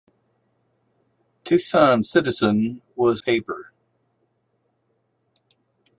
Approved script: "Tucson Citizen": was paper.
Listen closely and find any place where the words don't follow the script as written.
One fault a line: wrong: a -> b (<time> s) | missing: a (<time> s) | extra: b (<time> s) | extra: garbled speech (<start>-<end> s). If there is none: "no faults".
no faults